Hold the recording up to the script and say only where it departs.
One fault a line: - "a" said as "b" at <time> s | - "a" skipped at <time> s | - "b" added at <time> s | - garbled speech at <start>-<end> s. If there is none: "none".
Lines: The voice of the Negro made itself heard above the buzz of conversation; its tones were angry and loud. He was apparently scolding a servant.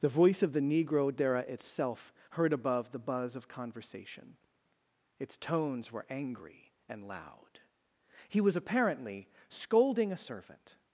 - "made" said as "dera" at 1.1 s